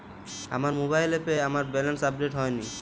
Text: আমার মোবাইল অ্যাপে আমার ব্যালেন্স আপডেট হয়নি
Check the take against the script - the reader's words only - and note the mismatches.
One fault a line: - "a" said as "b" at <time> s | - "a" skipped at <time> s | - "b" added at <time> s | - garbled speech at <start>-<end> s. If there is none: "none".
none